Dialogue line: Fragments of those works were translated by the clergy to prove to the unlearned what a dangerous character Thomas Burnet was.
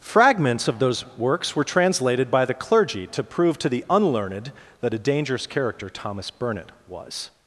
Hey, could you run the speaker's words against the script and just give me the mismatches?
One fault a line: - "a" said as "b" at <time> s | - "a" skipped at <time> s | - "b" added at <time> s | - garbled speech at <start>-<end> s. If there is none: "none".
- "what" said as "that" at 4.8 s